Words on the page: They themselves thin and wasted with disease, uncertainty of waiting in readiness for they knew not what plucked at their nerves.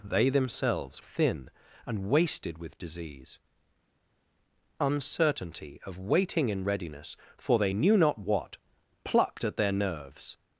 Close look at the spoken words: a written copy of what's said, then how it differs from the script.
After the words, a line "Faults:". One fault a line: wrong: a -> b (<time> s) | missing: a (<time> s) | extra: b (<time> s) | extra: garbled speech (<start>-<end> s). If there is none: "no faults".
They themselves thin and wasted with disease, uncertainty of waiting in readiness for they knew not what plucked at their nerves.
Faults:
no faults